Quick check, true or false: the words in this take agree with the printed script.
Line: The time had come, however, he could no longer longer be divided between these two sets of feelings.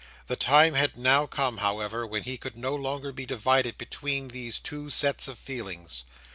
false